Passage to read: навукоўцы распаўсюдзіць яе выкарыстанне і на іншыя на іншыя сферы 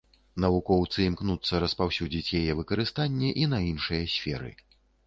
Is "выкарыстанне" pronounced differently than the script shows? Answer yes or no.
no